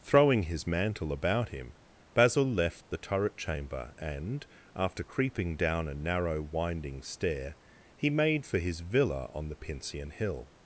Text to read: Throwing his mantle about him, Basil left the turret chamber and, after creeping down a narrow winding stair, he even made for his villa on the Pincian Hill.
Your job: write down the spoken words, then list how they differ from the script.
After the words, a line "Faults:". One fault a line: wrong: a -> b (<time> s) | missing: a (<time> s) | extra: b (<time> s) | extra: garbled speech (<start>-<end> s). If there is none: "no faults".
Throwing his mantle about him, Basil left the turret chamber and, after creeping down a narrow winding stair, he made for his villa on the Pincian Hill.
Faults:
missing: even (8.1 s)